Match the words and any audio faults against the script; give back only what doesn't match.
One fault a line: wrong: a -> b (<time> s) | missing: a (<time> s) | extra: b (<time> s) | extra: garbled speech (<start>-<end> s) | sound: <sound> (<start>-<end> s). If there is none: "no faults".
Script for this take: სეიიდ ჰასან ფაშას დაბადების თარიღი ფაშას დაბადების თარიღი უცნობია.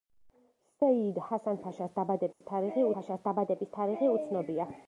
sound: dropout (2.3-2.4 s)